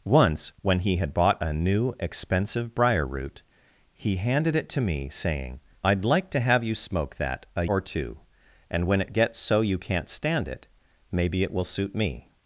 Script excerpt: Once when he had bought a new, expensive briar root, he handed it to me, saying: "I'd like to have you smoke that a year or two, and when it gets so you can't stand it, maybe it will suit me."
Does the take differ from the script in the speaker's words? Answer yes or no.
yes